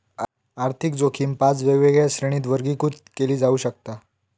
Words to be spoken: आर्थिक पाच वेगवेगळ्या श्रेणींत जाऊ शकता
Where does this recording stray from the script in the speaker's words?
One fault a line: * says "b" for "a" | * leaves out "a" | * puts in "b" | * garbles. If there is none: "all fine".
* puts in "जोखीम"
* puts in "वर्गीकृत केली"